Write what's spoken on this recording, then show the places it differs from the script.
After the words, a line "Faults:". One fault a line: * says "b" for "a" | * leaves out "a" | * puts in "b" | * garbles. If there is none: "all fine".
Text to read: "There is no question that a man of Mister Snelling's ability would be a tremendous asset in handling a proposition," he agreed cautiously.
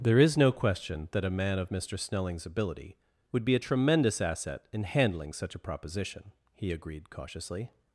"There is no question that a man of Mister Snelling's ability would be a tremendous asset in handling such a proposition," he agreed cautiously.
Faults:
* puts in "such"